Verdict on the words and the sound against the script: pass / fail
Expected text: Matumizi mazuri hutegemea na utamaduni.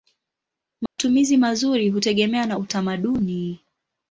fail